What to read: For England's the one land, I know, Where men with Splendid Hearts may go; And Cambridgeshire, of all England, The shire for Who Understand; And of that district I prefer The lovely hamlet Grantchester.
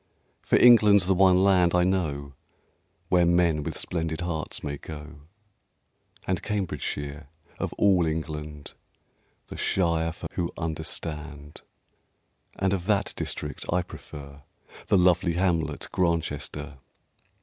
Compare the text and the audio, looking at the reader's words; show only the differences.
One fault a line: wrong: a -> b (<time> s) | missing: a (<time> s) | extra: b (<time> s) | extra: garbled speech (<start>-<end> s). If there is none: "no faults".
no faults